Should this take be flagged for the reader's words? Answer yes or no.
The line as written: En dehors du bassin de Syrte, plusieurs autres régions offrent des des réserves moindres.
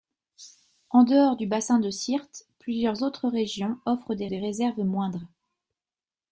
no